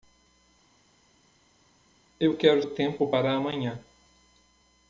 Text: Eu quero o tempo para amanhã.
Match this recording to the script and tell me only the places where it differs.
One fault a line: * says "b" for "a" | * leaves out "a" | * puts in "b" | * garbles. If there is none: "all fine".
all fine